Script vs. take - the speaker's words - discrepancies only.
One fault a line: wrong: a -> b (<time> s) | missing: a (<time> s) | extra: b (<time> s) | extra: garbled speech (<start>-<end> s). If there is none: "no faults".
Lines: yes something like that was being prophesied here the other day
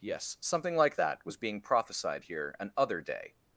wrong: the -> an (2.6 s)